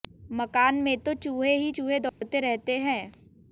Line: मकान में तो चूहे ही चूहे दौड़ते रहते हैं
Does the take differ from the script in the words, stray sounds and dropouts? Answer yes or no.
yes